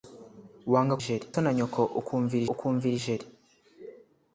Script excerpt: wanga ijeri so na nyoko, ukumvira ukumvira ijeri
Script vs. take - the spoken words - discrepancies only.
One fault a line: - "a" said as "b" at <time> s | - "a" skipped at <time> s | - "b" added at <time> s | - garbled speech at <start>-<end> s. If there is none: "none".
none